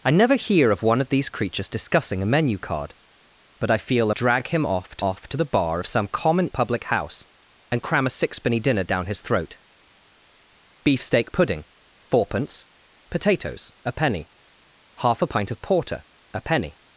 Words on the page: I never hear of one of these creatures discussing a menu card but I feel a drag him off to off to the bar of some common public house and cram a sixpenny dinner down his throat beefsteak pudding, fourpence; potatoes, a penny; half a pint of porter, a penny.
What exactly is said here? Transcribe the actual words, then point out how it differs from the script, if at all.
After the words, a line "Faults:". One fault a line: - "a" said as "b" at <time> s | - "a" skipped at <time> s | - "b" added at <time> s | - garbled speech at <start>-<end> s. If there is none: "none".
I never hear of one of these creatures discussing a menu card but I feel a drag him off to off to the bar of some common public house and cram a sixpenny dinner down his throat beefsteak pudding, fourpence; potatoes, a penny; half a pint of porter, a penny.
Faults:
none